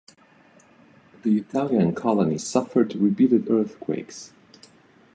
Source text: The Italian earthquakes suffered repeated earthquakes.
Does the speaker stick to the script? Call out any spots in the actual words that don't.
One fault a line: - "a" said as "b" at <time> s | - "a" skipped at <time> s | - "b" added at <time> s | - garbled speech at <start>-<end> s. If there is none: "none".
- "earthquakes" said as "colony" at 1.9 s